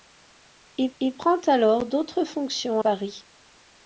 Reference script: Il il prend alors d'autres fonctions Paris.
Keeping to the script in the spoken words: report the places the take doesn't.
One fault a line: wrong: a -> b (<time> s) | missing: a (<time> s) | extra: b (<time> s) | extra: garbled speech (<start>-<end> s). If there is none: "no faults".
no faults